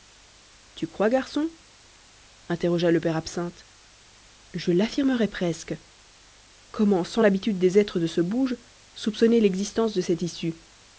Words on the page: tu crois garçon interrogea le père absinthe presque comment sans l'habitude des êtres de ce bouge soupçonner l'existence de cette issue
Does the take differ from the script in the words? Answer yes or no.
yes